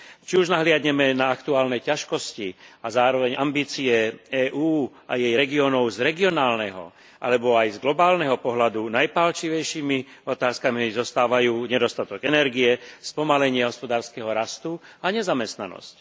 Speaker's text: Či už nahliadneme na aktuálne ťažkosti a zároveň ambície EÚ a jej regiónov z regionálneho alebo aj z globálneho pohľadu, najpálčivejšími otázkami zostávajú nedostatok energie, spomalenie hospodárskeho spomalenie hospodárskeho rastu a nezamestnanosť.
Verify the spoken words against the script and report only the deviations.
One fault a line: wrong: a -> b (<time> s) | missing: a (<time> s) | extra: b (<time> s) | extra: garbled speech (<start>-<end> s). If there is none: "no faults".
missing: spomalenie hospodárskeho (14.3 s)